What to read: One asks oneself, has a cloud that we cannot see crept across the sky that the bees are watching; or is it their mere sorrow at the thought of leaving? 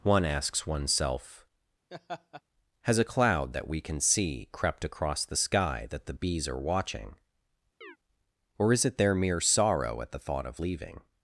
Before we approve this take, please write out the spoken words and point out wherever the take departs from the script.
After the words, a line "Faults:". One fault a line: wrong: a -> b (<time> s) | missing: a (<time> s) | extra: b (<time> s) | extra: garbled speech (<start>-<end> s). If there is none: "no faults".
One asks oneself, has a cloud that we can see crept across the sky that the bees are watching; or is it their mere sorrow at the thought of leaving?
Faults:
wrong: cannot -> can (3.8 s)